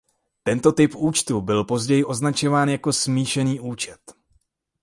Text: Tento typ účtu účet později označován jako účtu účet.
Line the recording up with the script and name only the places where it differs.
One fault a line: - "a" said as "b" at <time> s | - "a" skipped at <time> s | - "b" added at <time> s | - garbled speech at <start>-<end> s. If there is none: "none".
- "účet" said as "byl" at 1.4 s
- "účtu" said as "smíšený" at 2.9 s